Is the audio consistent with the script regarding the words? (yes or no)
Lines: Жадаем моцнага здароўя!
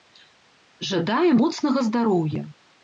yes